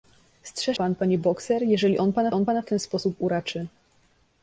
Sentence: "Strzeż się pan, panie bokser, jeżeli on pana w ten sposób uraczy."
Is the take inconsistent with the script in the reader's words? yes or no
yes